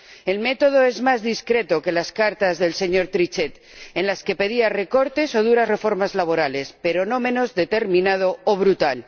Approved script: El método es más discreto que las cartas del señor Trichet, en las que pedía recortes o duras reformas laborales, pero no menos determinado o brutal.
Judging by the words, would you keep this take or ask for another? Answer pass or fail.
pass